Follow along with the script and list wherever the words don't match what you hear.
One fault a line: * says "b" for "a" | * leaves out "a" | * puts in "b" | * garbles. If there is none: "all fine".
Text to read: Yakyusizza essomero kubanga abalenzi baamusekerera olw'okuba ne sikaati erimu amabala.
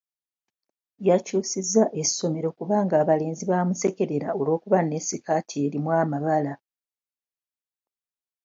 all fine